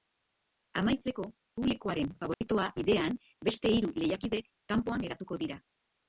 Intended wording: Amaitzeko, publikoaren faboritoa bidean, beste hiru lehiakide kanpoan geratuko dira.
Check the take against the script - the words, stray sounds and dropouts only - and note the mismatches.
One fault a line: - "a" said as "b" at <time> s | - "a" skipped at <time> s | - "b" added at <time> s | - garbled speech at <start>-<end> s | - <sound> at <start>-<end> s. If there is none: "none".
- dropout at 2.3-2.4 s